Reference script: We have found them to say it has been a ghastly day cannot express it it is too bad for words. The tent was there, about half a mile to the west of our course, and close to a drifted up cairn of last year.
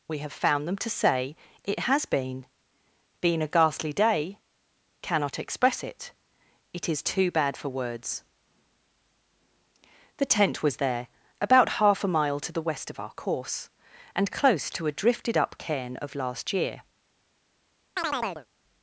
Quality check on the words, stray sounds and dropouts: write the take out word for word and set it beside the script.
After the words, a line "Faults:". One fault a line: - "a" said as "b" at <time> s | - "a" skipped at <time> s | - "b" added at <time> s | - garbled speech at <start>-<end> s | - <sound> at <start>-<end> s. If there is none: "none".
We have found them to say it has been been a ghastly day cannot express it it is too bad for words. The tent was there, about half a mile to the west of our course, and close to a drifted up cairn of last year.
Faults:
- "been" added at 3.2 s
- chirp at 18.0-18.5 s